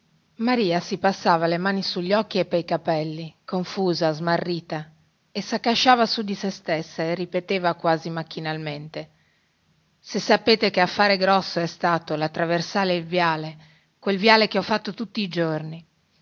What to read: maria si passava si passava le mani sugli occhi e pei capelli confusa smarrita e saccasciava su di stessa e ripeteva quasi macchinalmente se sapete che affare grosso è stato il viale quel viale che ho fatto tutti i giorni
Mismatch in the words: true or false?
true